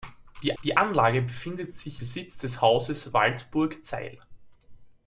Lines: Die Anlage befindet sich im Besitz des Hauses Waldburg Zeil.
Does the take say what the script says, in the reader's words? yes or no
no